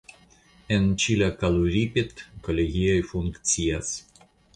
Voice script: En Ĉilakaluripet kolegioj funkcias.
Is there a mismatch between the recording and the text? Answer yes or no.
no